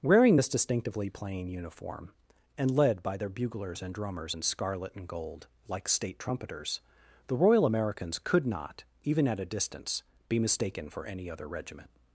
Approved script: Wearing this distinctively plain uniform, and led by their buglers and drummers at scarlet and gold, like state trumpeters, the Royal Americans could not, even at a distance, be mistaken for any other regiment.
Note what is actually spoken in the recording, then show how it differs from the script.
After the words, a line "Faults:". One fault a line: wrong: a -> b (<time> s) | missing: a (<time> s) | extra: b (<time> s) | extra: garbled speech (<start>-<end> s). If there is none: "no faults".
Wearing this distinctively plain uniform, and led by their buglers and drummers in scarlet and gold, like state trumpeters, the Royal Americans could not, even at a distance, be mistaken for any other regiment.
Faults:
wrong: at -> in (4.3 s)